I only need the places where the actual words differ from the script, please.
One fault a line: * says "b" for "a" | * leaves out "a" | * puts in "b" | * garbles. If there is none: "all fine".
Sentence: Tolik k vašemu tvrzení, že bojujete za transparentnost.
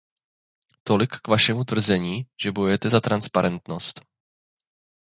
all fine